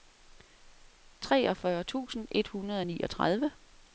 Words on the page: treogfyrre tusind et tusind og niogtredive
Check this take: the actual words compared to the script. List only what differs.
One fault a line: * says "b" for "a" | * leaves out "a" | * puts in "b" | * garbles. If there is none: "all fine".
* says "hundrede" for "tusind"